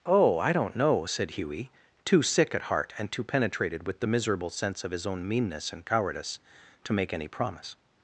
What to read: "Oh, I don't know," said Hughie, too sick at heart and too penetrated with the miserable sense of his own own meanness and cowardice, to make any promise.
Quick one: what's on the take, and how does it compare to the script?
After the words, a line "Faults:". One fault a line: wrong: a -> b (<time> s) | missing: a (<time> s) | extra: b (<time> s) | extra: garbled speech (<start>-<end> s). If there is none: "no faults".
"Oh, I don't know," said Hughie, too sick at heart and too penetrated with the miserable sense of his own meanness and cowardice, to make any promise.
Faults:
missing: own (5.3 s)